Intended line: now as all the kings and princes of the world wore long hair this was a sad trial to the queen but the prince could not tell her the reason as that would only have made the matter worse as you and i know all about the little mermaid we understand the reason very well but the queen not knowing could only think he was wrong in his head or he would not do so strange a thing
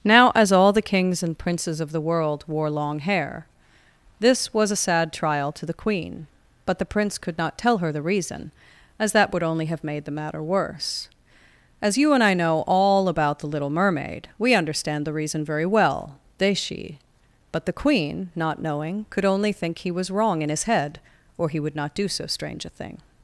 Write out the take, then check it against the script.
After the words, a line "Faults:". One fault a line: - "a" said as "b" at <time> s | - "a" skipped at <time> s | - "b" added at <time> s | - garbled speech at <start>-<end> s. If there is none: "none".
now as all the kings and princes of the world wore long hair this was a sad trial to the queen but the prince could not tell her the reason as that would only have made the matter worse as you and i know all about the little mermaid we understand the reason very well they she but the queen not knowing could only think he was wrong in his head or he would not do so strange a thing
Faults:
- "they she" added at 16.4 s